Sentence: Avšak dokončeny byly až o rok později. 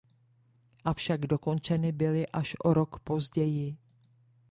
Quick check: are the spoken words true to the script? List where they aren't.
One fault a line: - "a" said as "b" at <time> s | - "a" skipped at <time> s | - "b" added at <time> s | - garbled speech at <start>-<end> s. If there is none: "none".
none